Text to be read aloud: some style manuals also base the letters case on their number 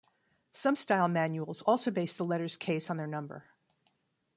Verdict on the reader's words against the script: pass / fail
pass